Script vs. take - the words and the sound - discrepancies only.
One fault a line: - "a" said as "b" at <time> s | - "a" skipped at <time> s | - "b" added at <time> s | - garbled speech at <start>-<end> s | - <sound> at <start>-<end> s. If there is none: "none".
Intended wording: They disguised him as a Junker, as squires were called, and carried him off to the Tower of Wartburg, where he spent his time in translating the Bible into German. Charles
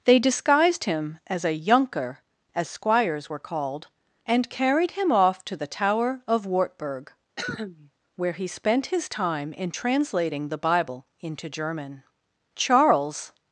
- cough at 7.4-7.9 s